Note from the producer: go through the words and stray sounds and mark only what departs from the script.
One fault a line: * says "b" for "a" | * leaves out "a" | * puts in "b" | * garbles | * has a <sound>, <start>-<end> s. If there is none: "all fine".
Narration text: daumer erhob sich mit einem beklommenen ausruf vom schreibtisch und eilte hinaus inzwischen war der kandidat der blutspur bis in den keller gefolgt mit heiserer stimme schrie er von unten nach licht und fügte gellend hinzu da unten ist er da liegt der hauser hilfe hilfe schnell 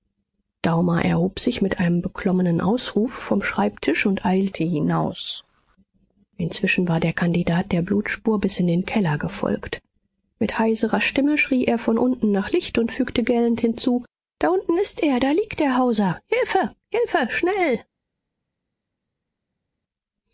all fine